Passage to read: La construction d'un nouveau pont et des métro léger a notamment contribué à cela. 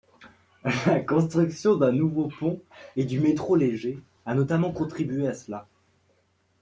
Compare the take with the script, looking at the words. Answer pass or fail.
fail